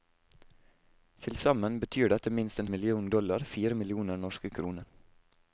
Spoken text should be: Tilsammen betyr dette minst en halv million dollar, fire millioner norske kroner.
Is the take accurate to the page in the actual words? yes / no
no